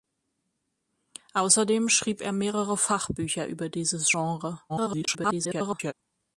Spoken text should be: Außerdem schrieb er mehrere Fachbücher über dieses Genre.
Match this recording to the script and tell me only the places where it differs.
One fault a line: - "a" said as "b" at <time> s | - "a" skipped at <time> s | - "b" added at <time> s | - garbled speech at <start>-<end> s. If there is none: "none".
- garbled speech at 4.7-5.9 s